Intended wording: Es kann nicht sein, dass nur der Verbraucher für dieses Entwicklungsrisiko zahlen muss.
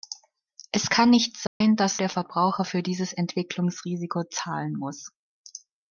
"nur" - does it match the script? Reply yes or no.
no